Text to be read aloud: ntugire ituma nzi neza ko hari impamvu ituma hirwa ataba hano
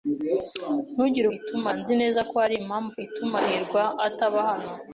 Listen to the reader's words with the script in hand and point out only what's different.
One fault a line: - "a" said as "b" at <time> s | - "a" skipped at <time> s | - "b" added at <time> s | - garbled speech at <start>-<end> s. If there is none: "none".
none